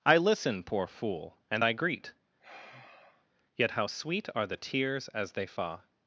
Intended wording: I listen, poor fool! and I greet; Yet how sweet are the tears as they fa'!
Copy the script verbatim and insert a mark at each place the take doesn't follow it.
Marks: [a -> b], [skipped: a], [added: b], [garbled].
I listen, poor fool! and I greet; Yet how sweet are the tears as they fa'!